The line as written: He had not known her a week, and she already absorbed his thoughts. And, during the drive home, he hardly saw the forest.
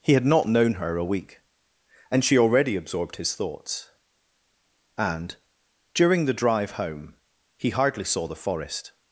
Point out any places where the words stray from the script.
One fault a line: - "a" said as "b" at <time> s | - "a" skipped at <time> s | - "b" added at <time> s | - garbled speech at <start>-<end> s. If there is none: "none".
none